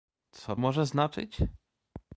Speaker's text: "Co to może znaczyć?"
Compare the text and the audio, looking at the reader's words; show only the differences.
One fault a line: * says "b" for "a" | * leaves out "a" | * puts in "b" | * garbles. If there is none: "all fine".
* leaves out "to"